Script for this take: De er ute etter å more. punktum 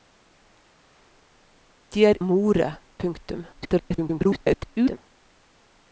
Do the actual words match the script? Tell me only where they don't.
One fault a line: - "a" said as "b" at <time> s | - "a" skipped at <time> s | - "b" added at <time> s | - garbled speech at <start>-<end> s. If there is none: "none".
- "ute etter" skipped at 2.2 s
- garbled speech at 3.5-5.0 s